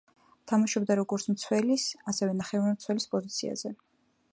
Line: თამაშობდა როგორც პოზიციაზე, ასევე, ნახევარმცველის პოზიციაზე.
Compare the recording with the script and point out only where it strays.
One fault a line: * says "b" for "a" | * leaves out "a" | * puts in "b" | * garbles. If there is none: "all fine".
* says "მცველის" for "პოზიციაზე"